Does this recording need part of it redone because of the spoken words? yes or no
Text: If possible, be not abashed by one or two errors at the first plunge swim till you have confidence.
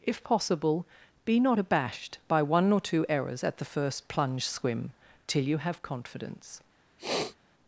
no